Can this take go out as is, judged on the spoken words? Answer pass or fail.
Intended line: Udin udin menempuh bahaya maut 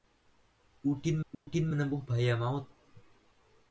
pass